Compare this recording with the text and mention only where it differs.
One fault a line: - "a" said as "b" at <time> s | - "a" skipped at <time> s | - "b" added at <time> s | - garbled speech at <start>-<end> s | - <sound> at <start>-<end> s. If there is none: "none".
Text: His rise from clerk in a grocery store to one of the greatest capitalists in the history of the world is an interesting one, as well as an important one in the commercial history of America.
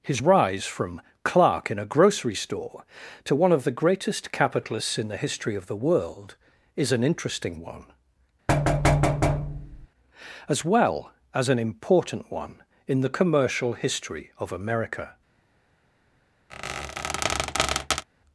- thud at 8.5-9.9 s
- squeak at 16.5-18.1 s